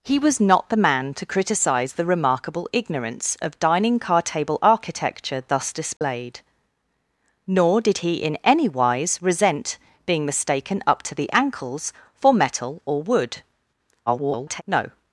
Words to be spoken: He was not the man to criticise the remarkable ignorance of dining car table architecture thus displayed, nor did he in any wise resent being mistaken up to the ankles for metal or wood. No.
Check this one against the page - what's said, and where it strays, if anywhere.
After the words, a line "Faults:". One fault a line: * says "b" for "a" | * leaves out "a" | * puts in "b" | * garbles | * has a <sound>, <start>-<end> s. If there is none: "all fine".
He was not the man to criticise the remarkable ignorance of dining car table architecture thus displayed, nor did he in any wise resent being mistaken up to the ankles for metal or wood. [garbled] No.
Faults:
* has a dropout, 6.0-6.0 s
* garbles